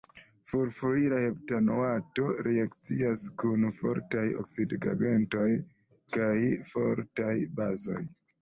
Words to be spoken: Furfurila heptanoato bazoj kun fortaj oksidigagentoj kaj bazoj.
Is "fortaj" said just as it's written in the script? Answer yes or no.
yes